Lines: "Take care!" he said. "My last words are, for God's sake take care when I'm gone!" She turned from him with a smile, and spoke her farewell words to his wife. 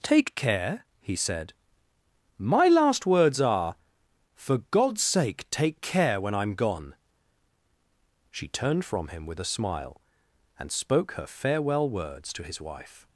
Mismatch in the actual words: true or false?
false